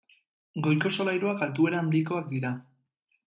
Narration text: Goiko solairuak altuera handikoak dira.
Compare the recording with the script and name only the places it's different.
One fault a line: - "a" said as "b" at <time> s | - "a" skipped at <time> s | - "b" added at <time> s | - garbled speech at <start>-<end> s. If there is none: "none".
none